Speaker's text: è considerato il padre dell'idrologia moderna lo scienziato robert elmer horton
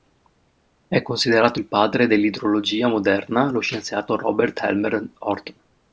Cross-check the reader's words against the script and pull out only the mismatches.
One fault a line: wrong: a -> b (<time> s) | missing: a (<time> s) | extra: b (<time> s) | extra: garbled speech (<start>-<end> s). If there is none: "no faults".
no faults